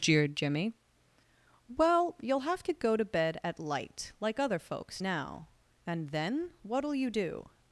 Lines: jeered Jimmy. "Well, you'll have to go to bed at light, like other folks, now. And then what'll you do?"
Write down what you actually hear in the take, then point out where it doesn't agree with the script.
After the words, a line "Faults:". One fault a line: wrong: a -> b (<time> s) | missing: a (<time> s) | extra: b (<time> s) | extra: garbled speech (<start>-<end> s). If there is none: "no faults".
jeered Jimmy. "Well, you'll have to go to bed at light, like other folks, now. And then what'll you do?"
Faults:
no faults